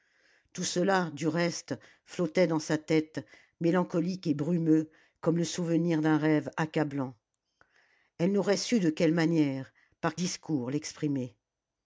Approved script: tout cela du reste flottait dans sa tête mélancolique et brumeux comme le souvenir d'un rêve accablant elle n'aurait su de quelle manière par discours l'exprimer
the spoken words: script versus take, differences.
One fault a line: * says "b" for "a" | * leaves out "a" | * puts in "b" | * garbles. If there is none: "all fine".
all fine